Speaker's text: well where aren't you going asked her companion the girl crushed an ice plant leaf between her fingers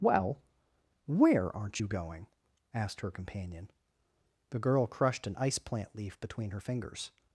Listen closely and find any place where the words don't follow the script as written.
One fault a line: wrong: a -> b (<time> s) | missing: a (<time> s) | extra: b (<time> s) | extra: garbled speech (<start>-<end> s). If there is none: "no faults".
no faults